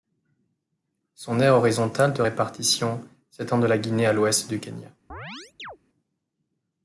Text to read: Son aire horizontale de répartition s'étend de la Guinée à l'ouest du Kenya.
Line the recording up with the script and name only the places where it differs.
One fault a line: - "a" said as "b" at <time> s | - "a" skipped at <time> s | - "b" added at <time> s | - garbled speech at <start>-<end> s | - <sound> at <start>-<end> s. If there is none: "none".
- chirp at 5.1-5.8 s